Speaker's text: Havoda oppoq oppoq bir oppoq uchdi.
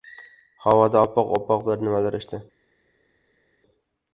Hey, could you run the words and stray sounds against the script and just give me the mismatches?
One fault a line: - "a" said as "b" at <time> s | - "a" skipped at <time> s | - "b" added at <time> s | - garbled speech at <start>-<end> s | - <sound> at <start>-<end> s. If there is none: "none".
- "oppoq" said as "nimalar" at 1.9 s